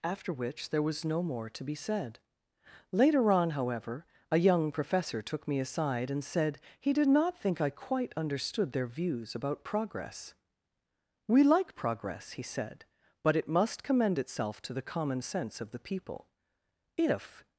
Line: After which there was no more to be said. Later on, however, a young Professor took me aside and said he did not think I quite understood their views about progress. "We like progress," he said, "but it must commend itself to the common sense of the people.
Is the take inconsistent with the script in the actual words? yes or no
yes